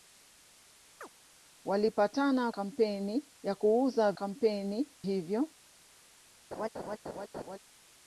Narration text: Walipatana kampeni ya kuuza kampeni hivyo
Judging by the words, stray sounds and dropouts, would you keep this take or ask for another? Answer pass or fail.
fail